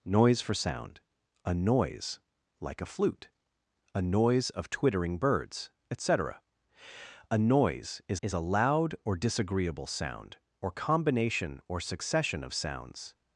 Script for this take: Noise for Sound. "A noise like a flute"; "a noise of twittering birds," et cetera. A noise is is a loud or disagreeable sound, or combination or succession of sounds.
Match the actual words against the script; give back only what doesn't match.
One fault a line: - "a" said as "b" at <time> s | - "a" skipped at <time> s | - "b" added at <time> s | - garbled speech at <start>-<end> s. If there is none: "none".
none